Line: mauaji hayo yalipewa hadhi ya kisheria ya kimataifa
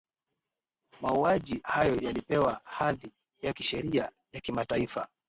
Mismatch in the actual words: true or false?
false